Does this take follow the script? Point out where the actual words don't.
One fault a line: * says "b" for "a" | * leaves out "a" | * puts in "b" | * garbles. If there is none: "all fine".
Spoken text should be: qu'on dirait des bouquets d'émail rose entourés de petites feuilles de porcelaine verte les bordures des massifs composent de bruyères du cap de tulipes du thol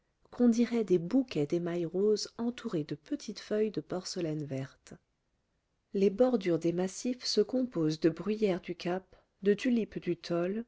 * puts in "se"